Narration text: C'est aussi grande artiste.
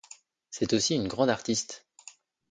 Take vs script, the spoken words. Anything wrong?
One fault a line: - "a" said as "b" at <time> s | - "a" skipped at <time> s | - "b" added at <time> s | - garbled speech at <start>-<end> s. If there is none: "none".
- "une" added at 0.9 s